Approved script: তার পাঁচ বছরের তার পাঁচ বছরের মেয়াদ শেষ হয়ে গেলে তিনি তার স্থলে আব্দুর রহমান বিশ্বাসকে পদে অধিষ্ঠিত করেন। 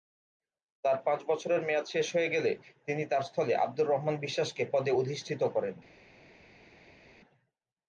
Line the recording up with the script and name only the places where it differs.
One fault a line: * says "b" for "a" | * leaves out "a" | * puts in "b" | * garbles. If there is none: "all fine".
* leaves out "তার পাঁচ বছরের"